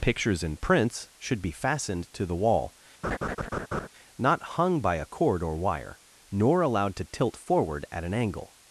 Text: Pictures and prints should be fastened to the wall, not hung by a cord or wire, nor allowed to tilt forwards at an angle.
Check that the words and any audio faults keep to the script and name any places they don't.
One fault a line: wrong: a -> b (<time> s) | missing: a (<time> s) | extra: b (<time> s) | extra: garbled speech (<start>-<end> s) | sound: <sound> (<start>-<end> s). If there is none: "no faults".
sound: laugh (3.0-3.9 s)
wrong: forwards -> forward (7.4 s)